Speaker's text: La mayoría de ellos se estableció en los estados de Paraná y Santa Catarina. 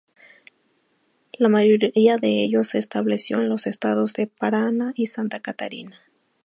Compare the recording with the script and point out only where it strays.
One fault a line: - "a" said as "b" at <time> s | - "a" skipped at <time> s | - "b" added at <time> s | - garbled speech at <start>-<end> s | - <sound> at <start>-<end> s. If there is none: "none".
none